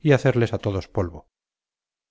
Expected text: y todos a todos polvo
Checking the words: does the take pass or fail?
fail